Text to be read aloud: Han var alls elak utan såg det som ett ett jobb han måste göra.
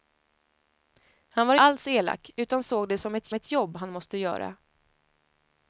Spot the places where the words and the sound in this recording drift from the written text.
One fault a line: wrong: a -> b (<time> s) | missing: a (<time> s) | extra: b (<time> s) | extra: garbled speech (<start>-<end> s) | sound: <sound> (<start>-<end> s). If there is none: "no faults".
no faults